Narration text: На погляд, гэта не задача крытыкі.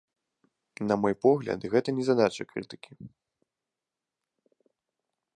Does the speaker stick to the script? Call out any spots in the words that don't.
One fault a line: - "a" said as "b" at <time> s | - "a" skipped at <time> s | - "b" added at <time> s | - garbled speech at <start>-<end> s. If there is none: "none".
- "мой" added at 1.0 s